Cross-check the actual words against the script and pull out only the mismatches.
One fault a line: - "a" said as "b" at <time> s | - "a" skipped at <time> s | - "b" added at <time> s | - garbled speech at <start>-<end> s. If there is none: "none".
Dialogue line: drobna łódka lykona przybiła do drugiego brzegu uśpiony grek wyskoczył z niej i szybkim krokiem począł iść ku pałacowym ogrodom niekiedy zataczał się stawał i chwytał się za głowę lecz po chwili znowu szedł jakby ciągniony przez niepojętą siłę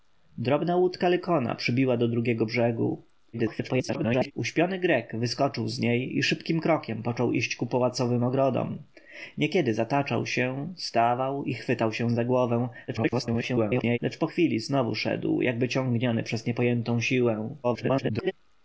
- garbled speech at 3.3-4.3 s
- garbled speech at 12.9-14.0 s
- garbled speech at 17.6-18.3 s